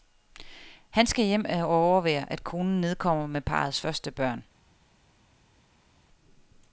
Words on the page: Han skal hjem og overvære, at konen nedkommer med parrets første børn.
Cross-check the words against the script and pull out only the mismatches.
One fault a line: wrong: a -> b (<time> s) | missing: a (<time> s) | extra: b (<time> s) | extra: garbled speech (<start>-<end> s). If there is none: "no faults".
no faults